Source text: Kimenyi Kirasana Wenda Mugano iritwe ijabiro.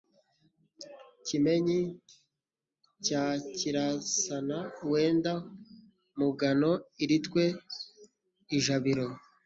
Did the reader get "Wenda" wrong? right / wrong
right